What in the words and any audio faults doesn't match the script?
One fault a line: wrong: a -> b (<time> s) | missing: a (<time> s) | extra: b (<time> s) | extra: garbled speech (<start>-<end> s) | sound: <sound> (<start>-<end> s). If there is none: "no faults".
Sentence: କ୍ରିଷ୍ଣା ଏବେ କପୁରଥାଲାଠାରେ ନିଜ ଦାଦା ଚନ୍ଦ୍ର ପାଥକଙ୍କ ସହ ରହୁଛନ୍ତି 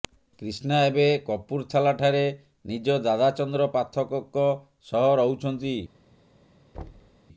sound: thud (6.7-7.2 s)